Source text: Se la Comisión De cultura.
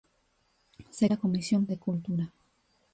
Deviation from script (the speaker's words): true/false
false